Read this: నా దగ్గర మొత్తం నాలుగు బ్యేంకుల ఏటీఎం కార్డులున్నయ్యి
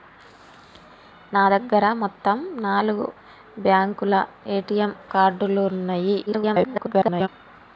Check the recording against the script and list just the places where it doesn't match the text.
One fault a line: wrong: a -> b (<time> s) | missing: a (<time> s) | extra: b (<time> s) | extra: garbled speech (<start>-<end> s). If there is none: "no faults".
extra: garbled speech (6.3-7.3 s)